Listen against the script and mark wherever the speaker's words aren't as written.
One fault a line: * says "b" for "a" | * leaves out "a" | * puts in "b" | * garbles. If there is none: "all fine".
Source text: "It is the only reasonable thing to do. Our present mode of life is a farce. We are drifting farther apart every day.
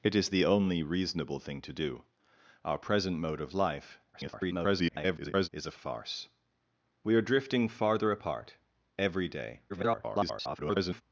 * garbles
* garbles